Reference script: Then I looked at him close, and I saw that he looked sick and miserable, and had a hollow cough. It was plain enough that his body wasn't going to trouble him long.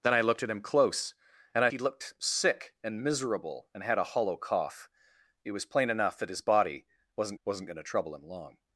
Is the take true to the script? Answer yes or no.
no